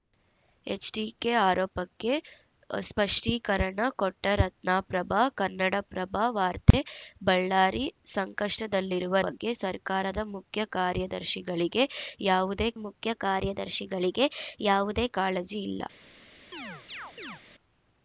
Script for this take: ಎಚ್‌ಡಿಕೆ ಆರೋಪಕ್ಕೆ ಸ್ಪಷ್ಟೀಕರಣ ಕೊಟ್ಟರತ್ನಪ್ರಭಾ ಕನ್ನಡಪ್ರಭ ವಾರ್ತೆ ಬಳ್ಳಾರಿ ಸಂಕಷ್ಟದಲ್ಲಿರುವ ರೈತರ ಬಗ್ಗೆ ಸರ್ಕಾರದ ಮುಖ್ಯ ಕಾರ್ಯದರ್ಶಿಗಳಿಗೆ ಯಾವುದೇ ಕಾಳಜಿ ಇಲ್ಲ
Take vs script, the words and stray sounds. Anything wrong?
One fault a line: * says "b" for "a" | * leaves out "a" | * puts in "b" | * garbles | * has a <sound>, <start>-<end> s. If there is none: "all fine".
* has a dropout, 6.7-6.7 s
* leaves out "ರೈತರ"
* puts in "ಮುಖ್ಯ ಕಾರ್ಯದರ್ಶಿಗಳಿಗೆ ಯಾವುದೇ"
* has a chirp, 16.5-17.4 s